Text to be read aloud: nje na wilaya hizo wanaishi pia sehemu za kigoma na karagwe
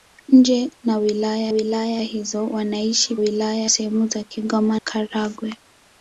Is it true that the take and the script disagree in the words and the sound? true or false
true